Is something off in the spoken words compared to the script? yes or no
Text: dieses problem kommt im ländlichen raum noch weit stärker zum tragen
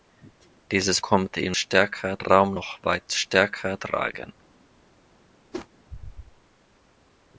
yes